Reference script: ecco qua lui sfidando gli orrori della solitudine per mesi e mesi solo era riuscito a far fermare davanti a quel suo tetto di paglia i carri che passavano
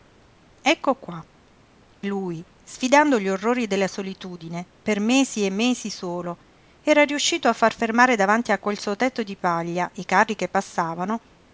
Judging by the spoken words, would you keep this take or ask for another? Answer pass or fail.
pass